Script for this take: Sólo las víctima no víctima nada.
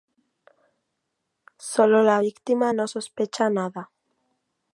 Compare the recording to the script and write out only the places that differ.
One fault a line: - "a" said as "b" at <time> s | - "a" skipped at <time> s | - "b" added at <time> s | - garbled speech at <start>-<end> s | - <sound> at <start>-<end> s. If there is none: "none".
- "las" said as "la" at 2.0 s
- "víctima" said as "sospecha" at 2.8 s